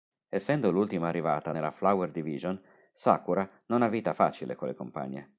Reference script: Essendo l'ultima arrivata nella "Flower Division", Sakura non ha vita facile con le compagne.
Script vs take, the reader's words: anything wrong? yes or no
no